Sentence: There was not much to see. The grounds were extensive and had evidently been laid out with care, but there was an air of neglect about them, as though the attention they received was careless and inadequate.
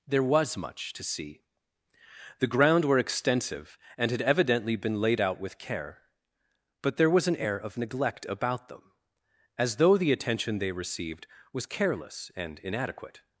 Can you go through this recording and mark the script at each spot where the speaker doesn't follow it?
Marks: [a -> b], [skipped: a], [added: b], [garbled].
There was [skipped: not] much to see. The [grounds -> ground] were extensive and had evidently been laid out with care, but there was an air of neglect about them, as though the attention they received was careless and inadequate.